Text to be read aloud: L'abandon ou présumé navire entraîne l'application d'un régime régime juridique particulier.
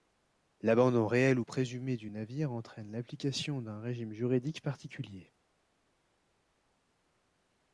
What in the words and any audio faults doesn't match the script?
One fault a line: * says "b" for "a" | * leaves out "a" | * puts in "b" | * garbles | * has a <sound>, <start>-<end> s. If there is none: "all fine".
* puts in "réel"
* puts in "du"
* leaves out "régime"